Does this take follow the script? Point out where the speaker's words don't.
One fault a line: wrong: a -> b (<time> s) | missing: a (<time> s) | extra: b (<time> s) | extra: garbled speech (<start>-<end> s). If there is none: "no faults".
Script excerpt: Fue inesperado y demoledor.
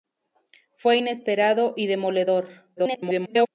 extra: garbled speech (2.8-3.5 s)